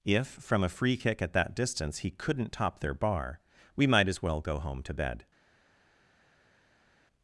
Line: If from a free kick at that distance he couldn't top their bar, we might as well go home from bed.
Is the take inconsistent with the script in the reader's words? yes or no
yes